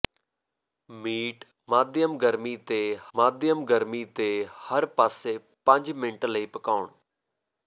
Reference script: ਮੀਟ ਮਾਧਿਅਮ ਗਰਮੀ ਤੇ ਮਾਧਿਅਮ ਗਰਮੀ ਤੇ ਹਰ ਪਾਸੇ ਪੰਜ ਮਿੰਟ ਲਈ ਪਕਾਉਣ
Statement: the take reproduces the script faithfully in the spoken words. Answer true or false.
true